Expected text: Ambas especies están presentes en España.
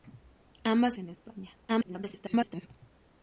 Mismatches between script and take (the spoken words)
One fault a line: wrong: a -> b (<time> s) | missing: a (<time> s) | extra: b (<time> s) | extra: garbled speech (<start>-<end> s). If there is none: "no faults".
missing: especies están presentes (1.0 s)
extra: garbled speech (1.7-2.7 s)